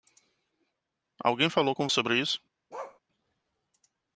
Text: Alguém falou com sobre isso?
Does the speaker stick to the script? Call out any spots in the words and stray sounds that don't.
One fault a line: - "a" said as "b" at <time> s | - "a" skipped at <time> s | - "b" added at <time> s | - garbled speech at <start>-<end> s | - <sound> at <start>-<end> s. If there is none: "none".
- bark at 2.7-3.0 s